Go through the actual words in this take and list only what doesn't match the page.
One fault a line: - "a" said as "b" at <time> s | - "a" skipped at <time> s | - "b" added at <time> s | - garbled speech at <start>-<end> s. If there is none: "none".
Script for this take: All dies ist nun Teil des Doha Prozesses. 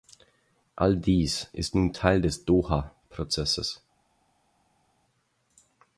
none